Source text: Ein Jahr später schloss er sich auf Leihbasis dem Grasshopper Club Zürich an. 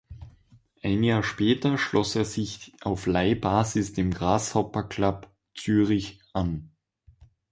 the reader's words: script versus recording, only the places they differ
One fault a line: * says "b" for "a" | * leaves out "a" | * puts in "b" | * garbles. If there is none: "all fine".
all fine